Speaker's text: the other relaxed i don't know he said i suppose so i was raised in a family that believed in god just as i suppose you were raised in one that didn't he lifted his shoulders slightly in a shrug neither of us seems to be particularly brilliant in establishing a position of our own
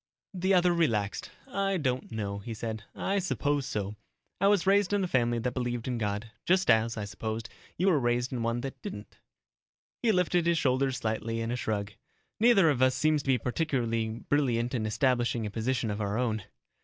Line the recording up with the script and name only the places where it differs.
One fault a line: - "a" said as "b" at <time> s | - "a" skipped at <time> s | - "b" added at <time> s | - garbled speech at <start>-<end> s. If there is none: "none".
none